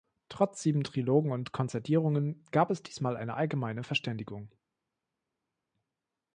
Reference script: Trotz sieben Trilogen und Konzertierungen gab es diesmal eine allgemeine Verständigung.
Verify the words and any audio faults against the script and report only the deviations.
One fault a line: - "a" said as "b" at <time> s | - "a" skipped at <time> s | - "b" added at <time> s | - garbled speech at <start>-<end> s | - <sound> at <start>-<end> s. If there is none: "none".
none